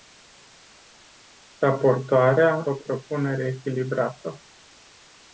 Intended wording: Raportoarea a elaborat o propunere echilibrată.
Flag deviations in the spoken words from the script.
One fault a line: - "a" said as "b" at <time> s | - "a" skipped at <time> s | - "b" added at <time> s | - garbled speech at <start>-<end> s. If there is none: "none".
- "a elaborat" skipped at 2.7 s